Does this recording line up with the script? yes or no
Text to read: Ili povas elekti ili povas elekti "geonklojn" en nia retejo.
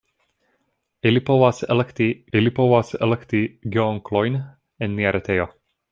yes